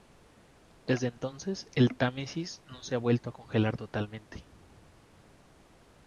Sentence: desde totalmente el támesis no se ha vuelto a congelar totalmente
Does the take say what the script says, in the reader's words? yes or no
no